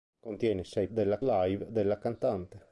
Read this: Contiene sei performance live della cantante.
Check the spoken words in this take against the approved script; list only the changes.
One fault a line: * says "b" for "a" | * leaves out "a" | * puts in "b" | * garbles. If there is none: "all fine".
* says "della" for "performance"